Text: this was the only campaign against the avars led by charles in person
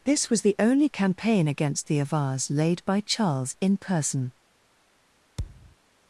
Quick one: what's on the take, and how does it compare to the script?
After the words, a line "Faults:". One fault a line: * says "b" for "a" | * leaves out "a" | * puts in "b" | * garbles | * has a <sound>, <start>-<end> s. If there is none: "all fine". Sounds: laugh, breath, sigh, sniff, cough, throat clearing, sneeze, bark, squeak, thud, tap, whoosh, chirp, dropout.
this was the only campaign against the avars laid by charles in person
Faults:
* says "laid" for "led"
* has a thud, 5.4-5.8 s